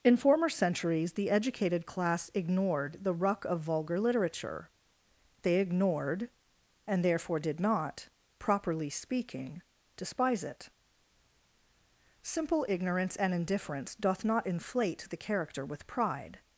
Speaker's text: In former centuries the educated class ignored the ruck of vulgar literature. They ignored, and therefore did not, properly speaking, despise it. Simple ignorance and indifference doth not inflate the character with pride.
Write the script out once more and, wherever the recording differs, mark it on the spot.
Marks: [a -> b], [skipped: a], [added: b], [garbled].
In former centuries the educated class ignored the ruck of vulgar literature. They ignored, and therefore did not, properly speaking, despise it. Simple ignorance and indifference doth not inflate the character with pride.